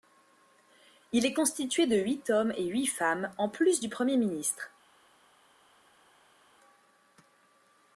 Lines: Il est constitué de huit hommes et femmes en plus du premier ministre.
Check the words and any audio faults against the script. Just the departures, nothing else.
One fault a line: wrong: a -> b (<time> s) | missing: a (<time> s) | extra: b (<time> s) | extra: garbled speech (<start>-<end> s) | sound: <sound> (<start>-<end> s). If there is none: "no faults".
extra: huit (2.7 s)